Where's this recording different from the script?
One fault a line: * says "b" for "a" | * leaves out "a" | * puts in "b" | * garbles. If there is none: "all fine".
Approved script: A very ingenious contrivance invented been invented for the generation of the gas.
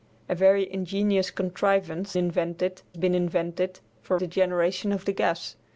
all fine